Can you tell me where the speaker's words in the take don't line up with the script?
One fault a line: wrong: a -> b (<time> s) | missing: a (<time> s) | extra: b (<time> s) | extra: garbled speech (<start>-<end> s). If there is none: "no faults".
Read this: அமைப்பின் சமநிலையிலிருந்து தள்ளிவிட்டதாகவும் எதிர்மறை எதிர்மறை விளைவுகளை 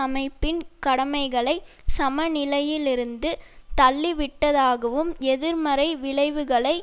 extra: கடமைகளை (0.8 s)
missing: எதிர்மறை (5.9 s)